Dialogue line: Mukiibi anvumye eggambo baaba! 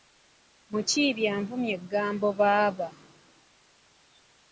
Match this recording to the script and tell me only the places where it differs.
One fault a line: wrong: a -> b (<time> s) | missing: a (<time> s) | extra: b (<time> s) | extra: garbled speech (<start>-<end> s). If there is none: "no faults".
no faults